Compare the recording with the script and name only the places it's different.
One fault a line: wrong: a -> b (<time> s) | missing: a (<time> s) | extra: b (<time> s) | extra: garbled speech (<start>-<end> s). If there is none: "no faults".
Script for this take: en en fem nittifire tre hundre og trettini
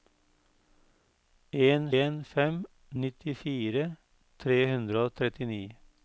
no faults